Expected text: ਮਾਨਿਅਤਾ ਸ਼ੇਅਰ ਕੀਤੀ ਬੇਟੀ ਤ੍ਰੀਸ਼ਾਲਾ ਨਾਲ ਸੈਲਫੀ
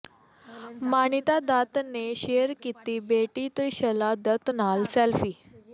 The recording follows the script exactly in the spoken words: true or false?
false